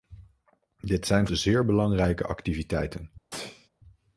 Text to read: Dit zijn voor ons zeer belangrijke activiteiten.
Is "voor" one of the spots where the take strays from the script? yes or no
yes